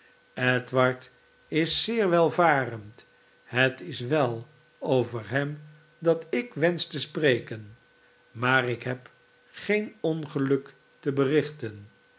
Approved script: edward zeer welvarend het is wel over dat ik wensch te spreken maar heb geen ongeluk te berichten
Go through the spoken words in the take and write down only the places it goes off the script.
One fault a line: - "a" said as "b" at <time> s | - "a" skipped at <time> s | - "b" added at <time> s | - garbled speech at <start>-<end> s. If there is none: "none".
- "is" added at 1.5 s
- "hem" added at 5.3 s
- "ik" added at 8.7 s